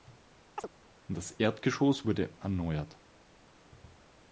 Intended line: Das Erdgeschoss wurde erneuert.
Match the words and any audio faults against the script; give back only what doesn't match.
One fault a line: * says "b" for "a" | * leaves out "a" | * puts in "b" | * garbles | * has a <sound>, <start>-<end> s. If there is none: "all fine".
* has a chirp, 0.6-0.7 s